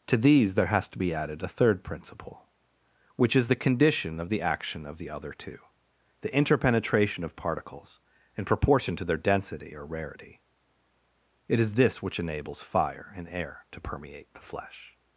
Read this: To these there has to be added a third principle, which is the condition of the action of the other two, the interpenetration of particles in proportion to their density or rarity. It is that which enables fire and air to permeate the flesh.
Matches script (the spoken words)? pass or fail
fail